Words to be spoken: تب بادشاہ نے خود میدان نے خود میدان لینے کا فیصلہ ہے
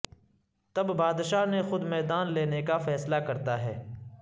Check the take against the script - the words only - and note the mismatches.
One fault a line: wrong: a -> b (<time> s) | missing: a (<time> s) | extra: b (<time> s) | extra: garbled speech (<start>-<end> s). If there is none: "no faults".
missing: نے خود میدان (2.3 s)
extra: کرتا (3.3 s)